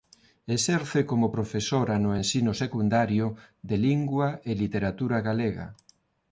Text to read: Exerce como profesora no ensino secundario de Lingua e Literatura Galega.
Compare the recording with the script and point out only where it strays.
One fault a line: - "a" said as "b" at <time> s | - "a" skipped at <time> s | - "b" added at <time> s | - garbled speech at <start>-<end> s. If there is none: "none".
none